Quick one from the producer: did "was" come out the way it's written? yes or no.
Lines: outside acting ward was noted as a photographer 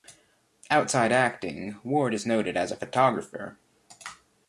no